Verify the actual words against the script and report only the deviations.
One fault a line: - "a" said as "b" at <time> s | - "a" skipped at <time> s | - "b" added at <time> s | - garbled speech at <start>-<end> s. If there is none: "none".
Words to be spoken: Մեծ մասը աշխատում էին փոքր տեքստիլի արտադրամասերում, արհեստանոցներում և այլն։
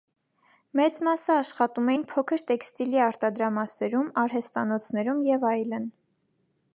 none